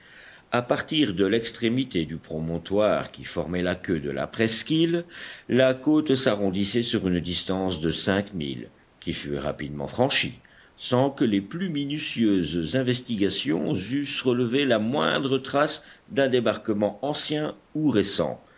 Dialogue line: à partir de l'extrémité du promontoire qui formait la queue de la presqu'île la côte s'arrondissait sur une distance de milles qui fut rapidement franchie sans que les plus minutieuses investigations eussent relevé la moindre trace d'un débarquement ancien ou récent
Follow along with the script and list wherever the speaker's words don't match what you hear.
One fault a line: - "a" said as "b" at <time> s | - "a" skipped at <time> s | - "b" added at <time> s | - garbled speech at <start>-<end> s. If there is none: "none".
- "cinq" added at 7.9 s